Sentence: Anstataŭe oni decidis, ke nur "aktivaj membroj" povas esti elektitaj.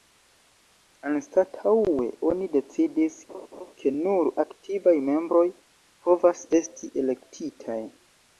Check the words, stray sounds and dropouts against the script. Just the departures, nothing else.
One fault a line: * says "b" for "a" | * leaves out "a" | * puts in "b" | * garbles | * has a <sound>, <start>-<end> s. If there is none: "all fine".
* has a laugh, 3.3-3.7 s